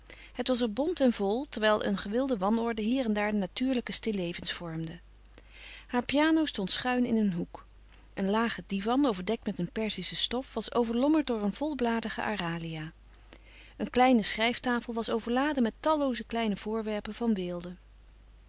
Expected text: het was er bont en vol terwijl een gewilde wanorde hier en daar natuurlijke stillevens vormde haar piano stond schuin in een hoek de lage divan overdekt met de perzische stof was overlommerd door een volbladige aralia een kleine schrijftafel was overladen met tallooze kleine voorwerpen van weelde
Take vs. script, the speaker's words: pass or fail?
fail